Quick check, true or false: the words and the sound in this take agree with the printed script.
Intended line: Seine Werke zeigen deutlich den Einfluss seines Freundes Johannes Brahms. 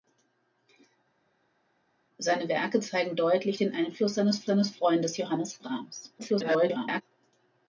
false